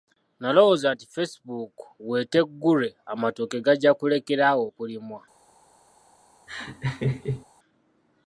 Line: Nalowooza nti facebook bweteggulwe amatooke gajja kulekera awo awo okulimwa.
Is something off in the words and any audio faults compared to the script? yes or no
yes